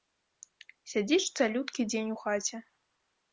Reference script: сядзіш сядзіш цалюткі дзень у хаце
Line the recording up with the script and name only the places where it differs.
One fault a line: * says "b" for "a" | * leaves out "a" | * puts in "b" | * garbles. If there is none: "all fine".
* leaves out "сядзіш"